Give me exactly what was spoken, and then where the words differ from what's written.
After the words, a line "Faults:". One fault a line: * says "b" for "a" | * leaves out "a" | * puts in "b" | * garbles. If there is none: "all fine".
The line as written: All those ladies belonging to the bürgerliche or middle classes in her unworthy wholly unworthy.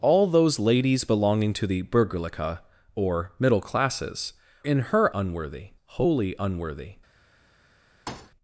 All those ladies belonging to the bürgerliche or middle classes in her unworthy wholly unworthy.
Faults:
all fine